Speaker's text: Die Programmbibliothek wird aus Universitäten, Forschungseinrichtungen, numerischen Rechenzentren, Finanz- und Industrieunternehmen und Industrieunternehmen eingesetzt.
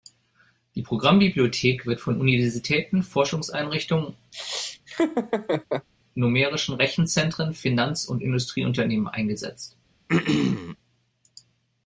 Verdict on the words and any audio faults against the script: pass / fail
fail